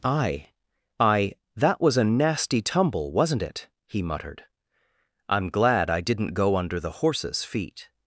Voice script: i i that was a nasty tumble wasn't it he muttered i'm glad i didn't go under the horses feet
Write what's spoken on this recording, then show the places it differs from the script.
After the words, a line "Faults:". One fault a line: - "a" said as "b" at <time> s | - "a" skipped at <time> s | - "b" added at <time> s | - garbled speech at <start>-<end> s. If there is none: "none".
i i that was a nasty tumble wasn't it he muttered i'm glad i didn't go under the horses feet
Faults:
none